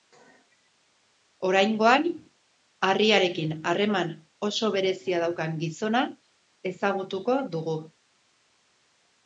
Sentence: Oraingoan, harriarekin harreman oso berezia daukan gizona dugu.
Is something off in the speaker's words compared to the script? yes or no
yes